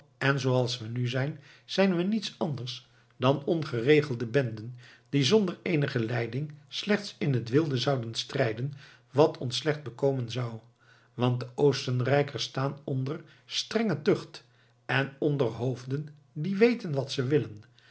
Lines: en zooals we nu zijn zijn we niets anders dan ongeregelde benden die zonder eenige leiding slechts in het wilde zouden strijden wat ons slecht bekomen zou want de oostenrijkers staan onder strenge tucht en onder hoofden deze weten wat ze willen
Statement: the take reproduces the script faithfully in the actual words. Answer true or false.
false